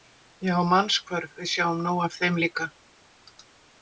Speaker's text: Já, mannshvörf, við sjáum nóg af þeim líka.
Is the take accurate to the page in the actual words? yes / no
yes